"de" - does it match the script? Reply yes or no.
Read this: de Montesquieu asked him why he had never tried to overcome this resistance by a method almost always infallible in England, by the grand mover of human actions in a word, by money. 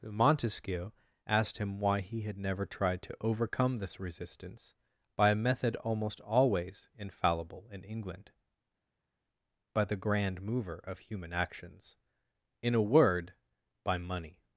no